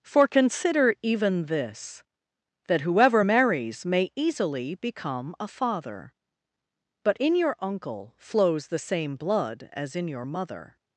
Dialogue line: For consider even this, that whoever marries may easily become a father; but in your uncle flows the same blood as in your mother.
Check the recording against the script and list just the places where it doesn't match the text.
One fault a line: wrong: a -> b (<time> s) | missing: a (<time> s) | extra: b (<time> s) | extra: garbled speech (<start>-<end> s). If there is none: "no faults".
no faults